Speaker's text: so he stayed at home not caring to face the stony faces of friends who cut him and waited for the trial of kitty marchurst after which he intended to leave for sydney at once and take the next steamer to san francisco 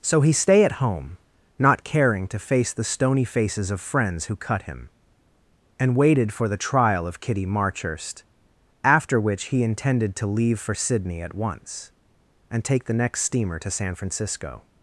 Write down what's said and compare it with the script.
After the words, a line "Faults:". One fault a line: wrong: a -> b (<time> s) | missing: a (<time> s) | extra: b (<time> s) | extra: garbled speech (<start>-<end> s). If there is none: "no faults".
so he stay at home not caring to face the stony faces of friends who cut him and waited for the trial of kitty marchurst after which he intended to leave for sydney at once and take the next steamer to san francisco
Faults:
wrong: stayed -> stay (0.3 s)